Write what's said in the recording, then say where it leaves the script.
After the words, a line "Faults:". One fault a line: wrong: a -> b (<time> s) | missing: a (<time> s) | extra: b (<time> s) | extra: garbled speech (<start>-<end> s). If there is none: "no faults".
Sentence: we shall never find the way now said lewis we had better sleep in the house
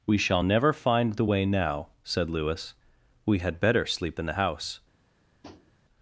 we shall never find the way now said lewis we had better sleep in the house
Faults:
no faults